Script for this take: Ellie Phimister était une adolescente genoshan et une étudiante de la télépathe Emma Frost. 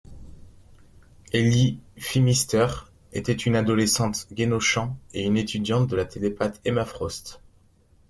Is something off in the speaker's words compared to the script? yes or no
no